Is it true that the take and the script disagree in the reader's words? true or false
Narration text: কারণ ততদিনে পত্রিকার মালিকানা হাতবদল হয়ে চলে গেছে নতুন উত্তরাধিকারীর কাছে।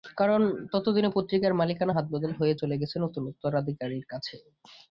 false